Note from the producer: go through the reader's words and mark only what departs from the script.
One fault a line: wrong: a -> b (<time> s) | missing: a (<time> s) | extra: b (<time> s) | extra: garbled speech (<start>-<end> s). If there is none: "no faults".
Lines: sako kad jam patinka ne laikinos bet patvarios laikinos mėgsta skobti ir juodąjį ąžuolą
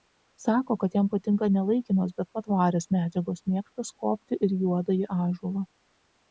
wrong: laikinos -> medžiagos (3.0 s)